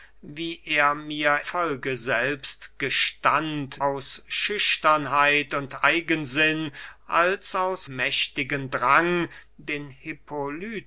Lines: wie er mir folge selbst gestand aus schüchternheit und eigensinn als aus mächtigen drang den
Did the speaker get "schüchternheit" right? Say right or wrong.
right